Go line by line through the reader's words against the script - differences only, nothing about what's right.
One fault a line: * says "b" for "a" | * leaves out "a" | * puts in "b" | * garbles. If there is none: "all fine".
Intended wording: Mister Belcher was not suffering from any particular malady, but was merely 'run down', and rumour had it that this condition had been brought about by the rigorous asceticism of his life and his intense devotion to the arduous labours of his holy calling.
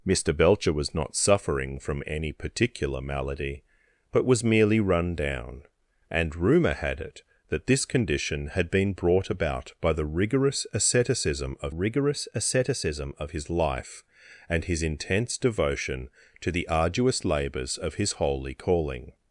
* puts in "rigorous asceticism of"